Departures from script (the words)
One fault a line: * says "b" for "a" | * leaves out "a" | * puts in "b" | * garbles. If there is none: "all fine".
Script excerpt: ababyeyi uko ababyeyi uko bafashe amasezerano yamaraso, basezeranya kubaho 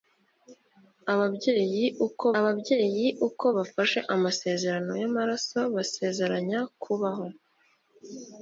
all fine